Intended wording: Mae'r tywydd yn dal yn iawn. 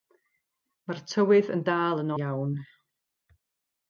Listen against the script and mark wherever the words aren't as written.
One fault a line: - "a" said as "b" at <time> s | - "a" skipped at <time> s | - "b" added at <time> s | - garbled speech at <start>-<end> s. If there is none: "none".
none